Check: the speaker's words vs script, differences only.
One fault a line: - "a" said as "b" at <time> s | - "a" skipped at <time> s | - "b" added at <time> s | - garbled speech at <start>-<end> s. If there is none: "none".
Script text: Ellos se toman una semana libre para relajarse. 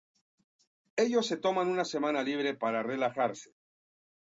none